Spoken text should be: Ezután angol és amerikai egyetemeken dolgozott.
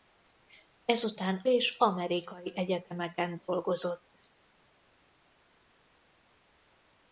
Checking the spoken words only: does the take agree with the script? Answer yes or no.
no